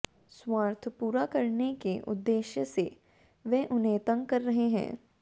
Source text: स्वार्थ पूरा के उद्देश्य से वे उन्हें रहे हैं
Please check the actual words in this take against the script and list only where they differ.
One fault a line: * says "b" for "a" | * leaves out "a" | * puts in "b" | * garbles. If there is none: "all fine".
* puts in "करने"
* puts in "तंग कर"